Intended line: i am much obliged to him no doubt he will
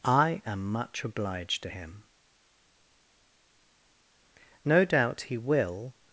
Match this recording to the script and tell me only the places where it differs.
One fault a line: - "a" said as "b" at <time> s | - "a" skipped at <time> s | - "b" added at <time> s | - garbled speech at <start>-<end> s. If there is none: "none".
none